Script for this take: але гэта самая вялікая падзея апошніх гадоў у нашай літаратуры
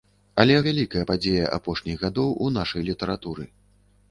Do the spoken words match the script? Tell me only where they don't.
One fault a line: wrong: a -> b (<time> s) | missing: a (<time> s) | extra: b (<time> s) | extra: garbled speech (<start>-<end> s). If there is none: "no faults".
missing: гэта самая (0.5 s)